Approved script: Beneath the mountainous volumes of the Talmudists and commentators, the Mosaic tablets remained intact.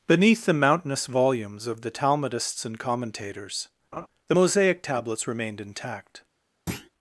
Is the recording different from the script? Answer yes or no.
no